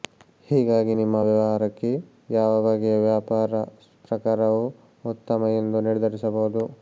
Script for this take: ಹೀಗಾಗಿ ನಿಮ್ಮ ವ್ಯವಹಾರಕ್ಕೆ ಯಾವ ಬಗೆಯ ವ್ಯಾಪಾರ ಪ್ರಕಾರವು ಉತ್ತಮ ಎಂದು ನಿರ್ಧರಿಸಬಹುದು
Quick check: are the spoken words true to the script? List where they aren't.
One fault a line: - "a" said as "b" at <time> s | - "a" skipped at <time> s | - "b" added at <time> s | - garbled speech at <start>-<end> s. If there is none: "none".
none